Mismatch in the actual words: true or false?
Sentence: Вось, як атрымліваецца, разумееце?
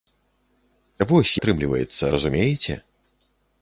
true